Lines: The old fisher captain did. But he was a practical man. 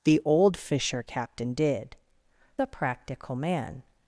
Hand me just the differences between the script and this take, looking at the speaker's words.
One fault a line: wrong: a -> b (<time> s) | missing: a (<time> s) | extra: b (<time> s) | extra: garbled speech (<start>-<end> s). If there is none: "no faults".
missing: But he was (1.9 s)